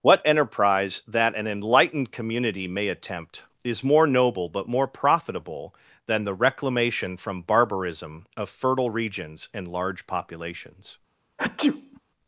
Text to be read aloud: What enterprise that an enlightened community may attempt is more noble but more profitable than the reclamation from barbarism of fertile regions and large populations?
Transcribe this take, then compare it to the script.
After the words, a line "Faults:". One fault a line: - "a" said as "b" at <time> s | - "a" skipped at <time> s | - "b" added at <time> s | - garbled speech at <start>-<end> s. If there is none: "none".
What enterprise that an enlightened community may attempt is more noble but more profitable than the reclamation from barbarism of fertile regions and large populations?
Faults:
none